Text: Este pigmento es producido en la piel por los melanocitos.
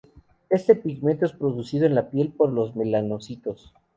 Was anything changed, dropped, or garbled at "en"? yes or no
no